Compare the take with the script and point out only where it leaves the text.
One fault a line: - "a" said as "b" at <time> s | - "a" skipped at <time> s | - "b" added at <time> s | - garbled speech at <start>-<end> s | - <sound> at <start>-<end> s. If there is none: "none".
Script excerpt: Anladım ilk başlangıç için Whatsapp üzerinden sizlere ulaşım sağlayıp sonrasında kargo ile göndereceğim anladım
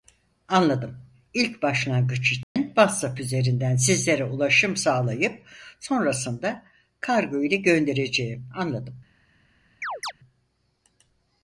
- dropout at 2.4-2.6 s
- chirp at 9.8-10.1 s